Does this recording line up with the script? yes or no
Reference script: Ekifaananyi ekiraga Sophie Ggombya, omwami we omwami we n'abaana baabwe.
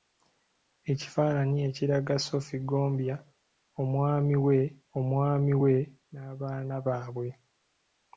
yes